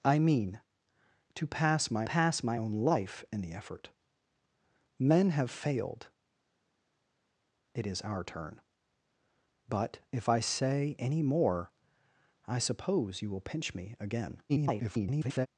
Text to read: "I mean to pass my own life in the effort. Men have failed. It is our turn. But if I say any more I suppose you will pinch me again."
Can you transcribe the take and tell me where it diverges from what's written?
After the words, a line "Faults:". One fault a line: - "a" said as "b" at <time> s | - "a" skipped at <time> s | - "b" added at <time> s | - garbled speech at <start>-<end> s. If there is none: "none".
"I mean to pass my pass my own life in the effort. Men have failed. It is our turn. But if I say any more I suppose you will pinch me again." [garbled]
Faults:
- "pass my" added at 2.0 s
- garbled speech at 14.5-15.5 s